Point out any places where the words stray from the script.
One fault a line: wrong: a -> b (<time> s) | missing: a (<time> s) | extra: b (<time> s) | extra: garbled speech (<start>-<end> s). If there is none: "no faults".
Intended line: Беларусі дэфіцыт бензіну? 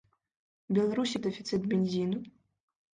no faults